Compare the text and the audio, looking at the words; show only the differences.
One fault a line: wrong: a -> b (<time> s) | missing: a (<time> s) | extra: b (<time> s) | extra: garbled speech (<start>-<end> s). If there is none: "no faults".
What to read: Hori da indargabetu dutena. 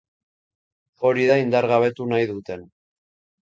extra: nahi (2.1 s)